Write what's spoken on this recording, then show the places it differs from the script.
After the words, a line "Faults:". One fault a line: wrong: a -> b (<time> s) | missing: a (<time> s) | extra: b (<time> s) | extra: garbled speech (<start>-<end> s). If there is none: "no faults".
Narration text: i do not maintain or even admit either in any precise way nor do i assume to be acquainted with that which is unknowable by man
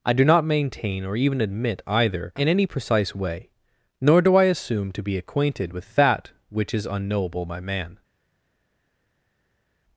i do not maintain or even admit either in any precise way nor do i assume to be acquainted with that which is unknowable by man
Faults:
no faults